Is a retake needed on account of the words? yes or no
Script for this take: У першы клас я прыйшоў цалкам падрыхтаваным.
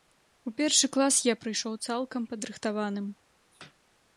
no